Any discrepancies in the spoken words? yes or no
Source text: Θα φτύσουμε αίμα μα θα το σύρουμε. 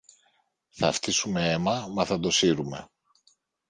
no